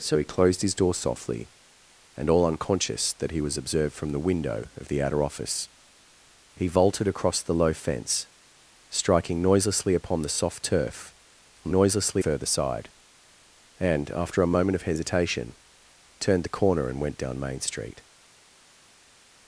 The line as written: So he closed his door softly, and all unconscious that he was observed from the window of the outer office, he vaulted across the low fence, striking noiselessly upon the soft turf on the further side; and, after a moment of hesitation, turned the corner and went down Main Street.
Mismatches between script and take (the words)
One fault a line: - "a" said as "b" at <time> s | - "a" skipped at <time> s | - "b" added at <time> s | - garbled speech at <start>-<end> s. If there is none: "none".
- "the" said as "noiselessly" at 11.7 s